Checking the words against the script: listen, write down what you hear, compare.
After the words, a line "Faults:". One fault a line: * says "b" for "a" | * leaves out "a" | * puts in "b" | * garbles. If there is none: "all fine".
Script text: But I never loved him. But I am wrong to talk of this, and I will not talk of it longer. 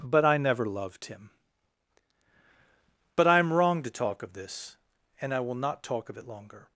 But I never loved him. But I am wrong to talk of this, and I will not talk of it longer.
Faults:
all fine